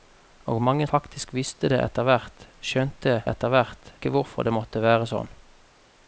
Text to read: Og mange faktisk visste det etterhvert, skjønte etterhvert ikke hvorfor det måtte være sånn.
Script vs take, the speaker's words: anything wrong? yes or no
no